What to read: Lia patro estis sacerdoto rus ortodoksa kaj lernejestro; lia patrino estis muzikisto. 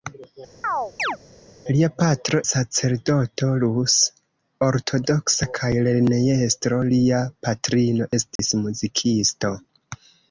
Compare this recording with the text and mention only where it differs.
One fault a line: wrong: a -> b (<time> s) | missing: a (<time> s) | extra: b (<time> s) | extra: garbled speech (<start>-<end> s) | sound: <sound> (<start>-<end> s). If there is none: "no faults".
sound: chirp (0.6-1.2 s)
missing: estis (2.4 s)
sound: dropout (8.4-8.4 s)